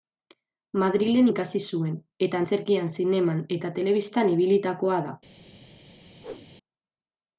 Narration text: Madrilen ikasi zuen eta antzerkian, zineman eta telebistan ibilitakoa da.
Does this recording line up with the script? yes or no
yes